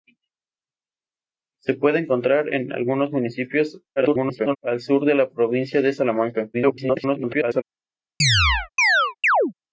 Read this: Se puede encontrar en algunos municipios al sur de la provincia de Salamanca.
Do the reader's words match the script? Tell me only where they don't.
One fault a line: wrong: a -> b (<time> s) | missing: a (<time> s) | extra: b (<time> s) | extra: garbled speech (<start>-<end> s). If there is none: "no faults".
extra: garbled speech (4.0-4.6 s)
extra: garbled speech (6.5-7.6 s)